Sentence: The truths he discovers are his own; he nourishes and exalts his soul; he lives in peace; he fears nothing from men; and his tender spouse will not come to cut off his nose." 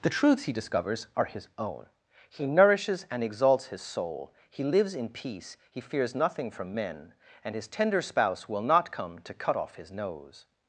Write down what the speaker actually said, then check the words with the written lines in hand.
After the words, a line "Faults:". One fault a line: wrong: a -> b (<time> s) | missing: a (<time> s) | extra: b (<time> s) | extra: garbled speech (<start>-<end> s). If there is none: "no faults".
The truths he discovers are his own; he nourishes and exalts his soul; he lives in peace; he fears nothing from men; and his tender spouse will not come to cut off his nose."
Faults:
no faults